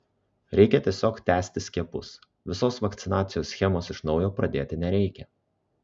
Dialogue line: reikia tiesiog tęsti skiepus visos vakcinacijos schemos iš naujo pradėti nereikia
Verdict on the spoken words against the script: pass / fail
pass